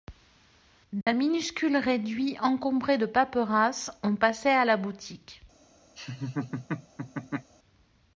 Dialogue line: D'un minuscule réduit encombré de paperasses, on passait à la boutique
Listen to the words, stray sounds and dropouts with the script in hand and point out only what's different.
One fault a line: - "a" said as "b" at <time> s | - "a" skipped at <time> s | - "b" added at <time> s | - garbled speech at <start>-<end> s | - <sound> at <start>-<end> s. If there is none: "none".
- dropout at 1.0-1.1 s
- laugh at 6.0-7.5 s